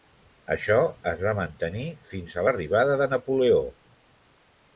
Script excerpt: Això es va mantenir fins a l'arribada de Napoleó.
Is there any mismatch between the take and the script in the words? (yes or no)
no